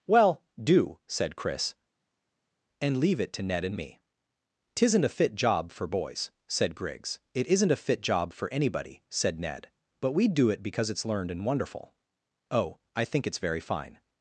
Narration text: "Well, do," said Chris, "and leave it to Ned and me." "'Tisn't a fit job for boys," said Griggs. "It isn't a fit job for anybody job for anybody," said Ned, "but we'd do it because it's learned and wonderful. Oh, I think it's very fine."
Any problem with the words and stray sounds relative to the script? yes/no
yes